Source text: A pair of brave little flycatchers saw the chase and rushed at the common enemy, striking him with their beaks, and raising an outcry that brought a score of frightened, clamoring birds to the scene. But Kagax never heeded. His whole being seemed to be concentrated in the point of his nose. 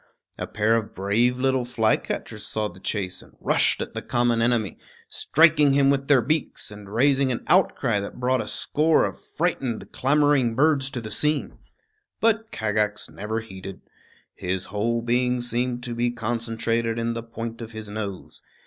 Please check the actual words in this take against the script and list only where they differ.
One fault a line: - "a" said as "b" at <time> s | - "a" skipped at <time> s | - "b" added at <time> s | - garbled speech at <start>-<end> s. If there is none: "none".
none